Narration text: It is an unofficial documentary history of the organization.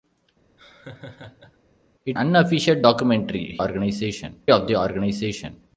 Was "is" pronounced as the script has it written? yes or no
no